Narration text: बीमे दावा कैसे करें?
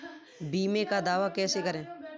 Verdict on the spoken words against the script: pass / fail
fail